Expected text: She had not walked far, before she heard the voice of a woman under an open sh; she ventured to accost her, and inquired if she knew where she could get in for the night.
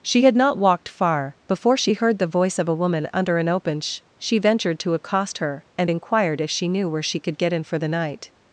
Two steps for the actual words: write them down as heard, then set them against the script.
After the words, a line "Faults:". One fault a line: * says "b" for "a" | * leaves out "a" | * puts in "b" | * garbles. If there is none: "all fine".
She had not walked far, before she heard the voice of a woman under an open sh; she ventured to accost her, and inquired if she knew where she could get in for the night.
Faults:
all fine